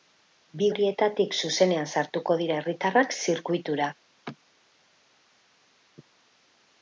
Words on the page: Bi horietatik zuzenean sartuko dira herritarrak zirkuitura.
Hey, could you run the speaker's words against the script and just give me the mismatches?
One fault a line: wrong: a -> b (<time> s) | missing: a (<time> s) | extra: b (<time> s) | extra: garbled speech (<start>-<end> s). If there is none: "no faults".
no faults